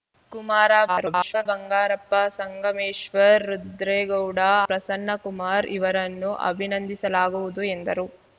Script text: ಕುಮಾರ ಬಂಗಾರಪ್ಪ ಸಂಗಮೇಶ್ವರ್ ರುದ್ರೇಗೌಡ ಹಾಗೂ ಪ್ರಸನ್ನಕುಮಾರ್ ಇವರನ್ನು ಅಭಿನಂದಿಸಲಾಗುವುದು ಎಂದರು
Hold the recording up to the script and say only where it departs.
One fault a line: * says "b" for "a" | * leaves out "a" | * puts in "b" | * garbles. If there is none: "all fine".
* garbles
* leaves out "ಹಾಗೂ"